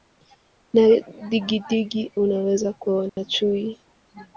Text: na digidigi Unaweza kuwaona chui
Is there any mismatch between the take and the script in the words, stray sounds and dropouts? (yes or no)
yes